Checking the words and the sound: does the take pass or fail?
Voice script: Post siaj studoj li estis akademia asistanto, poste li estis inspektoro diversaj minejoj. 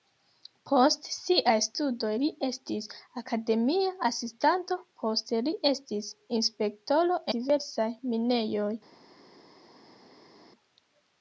pass